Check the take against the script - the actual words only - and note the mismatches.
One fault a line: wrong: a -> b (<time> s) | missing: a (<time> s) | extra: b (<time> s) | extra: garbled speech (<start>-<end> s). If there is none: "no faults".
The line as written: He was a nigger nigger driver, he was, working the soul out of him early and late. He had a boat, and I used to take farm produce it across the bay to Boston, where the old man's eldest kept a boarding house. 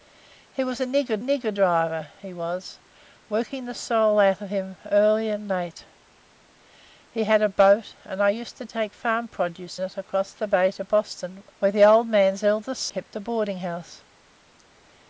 no faults